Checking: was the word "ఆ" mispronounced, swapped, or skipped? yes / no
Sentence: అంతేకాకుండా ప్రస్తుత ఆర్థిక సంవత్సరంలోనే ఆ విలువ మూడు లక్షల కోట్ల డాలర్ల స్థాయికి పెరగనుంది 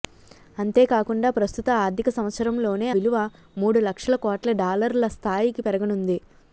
yes